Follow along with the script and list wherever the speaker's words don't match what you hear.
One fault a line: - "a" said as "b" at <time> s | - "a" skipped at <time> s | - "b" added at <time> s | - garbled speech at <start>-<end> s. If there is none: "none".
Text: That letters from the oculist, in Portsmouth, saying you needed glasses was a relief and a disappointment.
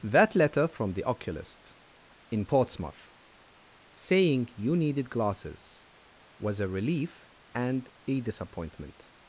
- "letters" said as "letter" at 0.3 s